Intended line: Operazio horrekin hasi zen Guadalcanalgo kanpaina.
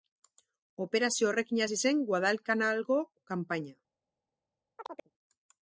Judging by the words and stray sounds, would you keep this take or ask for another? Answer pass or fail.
fail